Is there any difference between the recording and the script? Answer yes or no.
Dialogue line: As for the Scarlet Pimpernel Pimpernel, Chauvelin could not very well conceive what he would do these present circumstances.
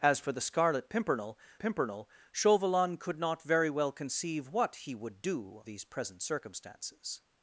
no